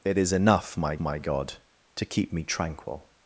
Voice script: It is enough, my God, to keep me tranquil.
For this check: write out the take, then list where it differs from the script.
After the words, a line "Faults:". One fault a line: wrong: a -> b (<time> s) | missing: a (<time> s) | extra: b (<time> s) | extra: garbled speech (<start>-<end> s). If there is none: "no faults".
It is enough, my my God, to keep me tranquil.
Faults:
extra: my (1.0 s)